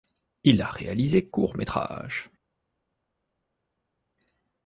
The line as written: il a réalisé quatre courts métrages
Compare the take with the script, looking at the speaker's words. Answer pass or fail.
fail